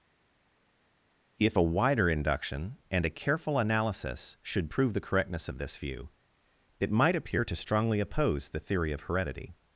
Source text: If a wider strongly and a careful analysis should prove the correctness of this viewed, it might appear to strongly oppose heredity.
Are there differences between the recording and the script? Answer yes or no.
yes